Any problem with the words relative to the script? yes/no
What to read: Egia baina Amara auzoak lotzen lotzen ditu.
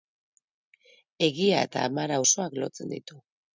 yes